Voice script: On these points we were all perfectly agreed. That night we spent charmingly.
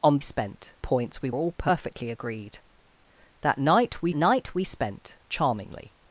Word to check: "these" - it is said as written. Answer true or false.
false